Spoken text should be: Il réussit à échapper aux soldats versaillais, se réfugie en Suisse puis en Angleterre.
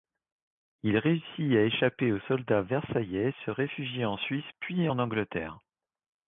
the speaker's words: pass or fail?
pass